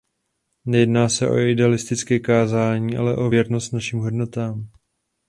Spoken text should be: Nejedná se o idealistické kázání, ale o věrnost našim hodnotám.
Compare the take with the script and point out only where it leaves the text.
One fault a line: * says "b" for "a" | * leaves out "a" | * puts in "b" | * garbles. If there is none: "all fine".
all fine